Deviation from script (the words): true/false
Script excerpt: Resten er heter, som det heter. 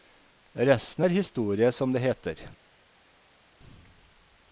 true